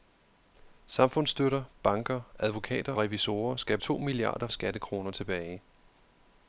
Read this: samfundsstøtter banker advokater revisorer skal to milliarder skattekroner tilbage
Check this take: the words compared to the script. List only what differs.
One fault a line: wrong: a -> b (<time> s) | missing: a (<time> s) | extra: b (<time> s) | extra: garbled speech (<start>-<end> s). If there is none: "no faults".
no faults